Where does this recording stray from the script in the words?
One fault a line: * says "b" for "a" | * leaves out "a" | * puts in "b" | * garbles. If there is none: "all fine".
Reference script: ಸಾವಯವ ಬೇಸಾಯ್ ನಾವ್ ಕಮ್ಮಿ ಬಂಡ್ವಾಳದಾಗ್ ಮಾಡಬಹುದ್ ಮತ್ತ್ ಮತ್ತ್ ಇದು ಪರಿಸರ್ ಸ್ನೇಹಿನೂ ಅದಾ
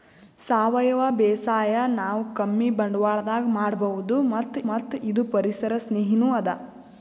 all fine